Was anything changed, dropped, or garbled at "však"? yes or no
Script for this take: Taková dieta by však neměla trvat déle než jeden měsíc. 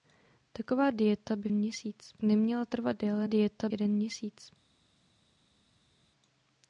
yes